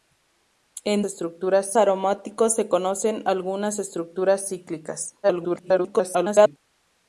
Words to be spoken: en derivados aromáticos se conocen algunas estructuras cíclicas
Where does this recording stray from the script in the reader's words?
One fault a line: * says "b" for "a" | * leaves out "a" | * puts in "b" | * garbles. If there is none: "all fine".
* says "estructuras" for "derivados"
* garbles